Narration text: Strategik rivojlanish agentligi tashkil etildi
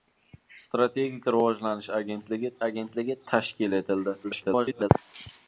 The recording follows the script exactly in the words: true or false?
false